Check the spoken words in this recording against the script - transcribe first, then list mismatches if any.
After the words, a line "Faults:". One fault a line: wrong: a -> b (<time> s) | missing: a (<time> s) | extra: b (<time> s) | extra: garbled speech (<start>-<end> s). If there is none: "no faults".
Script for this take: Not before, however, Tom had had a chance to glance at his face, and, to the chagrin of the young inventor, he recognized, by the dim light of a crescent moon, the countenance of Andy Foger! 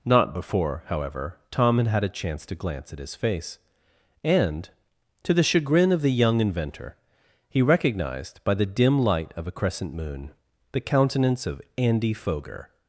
Not before, however, Tom had had a chance to glance at his face, and, to the chagrin of the young inventor, he recognized, by the dim light of a crescent moon, the countenance of Andy Foger!
Faults:
no faults